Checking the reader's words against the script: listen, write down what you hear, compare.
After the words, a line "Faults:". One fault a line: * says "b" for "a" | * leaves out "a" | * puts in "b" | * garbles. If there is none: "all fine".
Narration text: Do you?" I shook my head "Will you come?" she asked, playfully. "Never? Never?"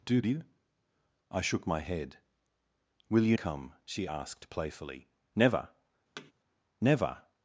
Do you?" I shook my head "Will you come?" she asked, playfully. "Never? Never?"
Faults:
all fine